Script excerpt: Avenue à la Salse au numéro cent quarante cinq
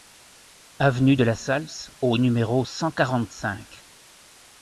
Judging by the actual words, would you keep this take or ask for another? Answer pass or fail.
fail